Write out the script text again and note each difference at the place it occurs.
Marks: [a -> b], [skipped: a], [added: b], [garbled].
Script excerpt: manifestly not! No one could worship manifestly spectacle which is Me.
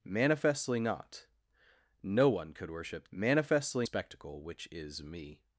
manifestly not! No one could worship manifestly spectacle which is Me.